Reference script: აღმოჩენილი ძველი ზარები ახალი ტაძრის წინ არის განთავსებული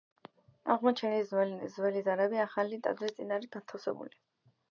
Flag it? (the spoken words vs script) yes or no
no